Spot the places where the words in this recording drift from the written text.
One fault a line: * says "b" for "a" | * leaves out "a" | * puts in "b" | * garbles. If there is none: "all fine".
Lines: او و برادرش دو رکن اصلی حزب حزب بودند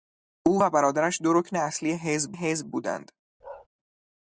all fine